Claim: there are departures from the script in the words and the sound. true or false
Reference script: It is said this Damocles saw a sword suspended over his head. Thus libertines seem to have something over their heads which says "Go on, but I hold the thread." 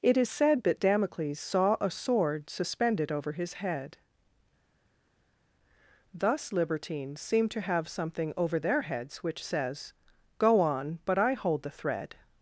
true